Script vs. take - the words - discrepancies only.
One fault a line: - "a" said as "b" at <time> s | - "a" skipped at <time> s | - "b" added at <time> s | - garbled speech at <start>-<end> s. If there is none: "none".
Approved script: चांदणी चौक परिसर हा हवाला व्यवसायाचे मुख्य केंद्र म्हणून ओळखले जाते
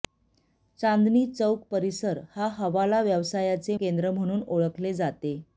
- "मुख्य" skipped at 3.8 s